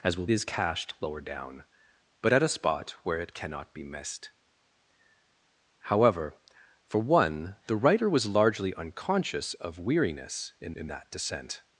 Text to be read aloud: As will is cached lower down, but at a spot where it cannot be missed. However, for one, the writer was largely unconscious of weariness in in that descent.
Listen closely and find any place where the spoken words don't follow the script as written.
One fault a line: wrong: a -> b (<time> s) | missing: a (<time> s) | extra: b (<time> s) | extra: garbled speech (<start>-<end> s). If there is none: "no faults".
no faults